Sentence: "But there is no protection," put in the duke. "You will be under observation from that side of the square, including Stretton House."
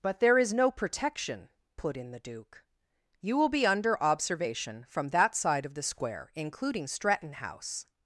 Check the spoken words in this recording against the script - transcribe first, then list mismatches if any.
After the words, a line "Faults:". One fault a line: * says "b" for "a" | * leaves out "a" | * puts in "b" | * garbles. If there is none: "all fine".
"But there is no protection," put in the duke. "You will be under observation from that side of the square, including Stretton House."
Faults:
all fine